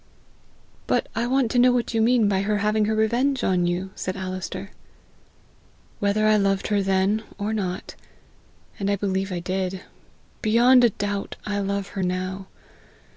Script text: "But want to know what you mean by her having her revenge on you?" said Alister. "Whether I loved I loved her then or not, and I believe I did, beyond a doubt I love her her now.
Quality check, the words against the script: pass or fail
fail